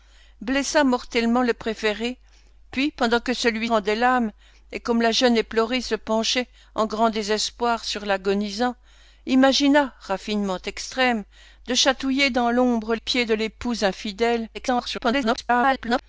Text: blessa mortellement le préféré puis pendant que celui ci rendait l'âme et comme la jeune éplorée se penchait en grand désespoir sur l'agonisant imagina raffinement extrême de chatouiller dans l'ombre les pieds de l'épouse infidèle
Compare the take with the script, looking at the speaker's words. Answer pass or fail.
fail